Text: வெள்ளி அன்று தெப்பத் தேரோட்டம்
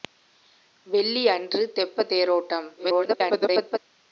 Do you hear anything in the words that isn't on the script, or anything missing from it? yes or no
yes